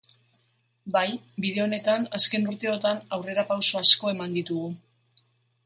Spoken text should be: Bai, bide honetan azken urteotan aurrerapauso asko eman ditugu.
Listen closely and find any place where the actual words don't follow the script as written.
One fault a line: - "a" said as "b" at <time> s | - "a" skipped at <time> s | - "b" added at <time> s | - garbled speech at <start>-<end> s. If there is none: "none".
none